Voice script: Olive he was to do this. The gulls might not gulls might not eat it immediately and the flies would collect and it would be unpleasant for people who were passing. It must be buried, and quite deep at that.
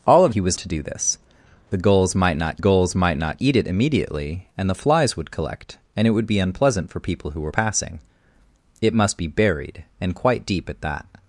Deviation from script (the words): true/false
false